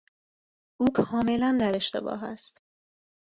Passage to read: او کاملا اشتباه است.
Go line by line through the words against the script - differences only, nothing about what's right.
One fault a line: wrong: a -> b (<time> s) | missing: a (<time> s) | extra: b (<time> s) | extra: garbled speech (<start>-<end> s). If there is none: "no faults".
extra: در (1.6 s)